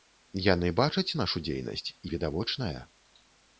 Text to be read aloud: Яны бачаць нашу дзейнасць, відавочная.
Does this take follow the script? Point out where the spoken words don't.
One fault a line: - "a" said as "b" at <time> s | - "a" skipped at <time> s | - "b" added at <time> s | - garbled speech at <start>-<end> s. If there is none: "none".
none